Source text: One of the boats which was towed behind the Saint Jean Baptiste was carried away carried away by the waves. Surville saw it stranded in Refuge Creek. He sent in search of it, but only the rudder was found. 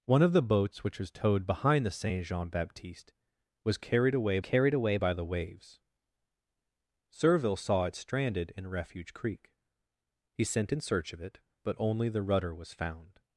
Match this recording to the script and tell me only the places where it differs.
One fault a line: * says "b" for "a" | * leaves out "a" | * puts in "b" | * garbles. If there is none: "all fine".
all fine